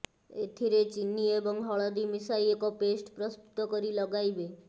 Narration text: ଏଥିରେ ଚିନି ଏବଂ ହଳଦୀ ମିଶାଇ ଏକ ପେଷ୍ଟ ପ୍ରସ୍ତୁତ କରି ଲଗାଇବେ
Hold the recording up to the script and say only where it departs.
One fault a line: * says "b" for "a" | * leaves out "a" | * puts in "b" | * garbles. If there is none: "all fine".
all fine